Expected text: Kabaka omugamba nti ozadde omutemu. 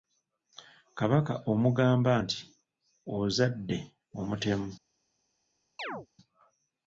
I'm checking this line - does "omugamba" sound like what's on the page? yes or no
yes